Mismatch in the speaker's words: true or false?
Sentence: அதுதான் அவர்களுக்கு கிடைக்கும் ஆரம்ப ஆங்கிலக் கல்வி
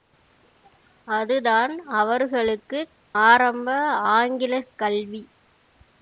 true